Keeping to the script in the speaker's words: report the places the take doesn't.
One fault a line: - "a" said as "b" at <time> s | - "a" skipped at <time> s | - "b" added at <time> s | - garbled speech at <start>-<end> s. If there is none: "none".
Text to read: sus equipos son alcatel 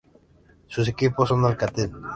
none